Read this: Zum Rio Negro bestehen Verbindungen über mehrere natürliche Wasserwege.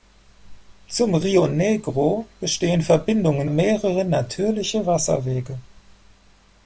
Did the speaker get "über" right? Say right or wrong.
wrong